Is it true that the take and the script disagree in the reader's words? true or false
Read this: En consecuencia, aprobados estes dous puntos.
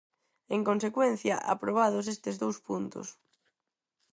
false